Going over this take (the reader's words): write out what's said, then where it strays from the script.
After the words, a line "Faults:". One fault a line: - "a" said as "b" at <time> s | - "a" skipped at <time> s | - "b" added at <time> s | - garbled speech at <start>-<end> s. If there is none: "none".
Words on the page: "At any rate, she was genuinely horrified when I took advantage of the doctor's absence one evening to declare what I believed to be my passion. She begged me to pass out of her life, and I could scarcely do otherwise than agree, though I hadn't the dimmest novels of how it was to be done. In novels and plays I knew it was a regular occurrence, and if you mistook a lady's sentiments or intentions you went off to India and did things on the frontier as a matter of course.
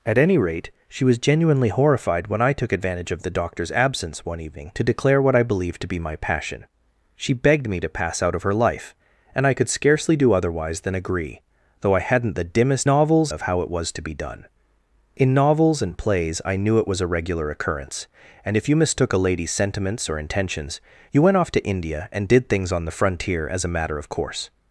"At any rate, she was genuinely horrified when I took advantage of the doctor's absence one evening to declare what I believed to be my passion. She begged me to pass out of her life, and I could scarcely do otherwise than agree, though I hadn't the dimmest novels of how it was to be done. In novels and plays I knew it was a regular occurrence, and if you mistook a lady's sentiments or intentions you went off to India and did things on the frontier as a matter of course.
Faults:
none